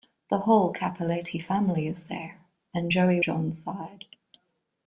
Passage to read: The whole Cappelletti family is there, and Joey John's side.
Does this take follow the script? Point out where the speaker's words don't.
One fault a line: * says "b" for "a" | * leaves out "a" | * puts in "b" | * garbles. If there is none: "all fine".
all fine